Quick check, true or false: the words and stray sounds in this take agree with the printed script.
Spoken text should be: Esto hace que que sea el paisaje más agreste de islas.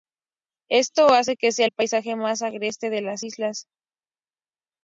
false